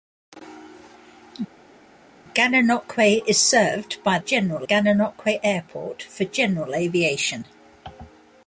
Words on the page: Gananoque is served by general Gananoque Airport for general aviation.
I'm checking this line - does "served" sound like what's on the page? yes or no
yes